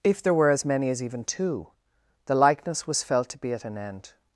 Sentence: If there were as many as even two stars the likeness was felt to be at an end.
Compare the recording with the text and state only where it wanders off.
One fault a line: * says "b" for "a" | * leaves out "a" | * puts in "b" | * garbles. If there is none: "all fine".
* leaves out "stars"